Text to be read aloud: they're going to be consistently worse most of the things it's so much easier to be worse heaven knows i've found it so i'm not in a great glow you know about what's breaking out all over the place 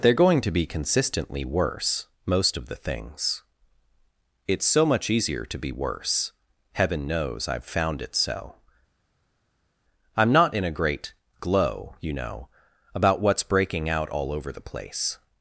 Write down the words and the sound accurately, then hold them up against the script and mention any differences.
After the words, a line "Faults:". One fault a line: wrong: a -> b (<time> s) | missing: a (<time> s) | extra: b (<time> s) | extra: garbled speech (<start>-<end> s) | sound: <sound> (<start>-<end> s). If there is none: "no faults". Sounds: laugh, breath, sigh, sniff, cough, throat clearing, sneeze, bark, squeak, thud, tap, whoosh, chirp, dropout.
they're going to be consistently worse most of the things it's so much easier to be worse heaven knows i've found it so i'm not in a great glow you know about what's breaking out all over the place
Faults:
no faults